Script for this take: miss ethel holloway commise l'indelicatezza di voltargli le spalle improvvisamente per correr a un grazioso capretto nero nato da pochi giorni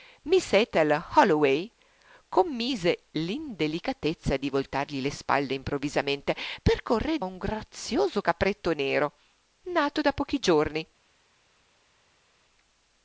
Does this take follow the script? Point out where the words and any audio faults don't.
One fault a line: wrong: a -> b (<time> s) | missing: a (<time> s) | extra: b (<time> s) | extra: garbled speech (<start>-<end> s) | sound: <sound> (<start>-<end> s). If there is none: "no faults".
no faults